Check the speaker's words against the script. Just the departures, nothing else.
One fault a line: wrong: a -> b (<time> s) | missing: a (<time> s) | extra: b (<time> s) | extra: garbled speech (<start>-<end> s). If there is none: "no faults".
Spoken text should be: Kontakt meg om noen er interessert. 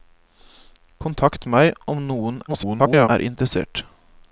extra: garbled speech (2.5-3.1 s)